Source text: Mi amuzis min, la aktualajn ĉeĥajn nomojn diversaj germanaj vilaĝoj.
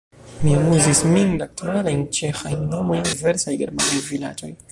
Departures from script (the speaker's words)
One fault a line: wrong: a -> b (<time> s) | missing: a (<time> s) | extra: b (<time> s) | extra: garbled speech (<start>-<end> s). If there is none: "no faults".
no faults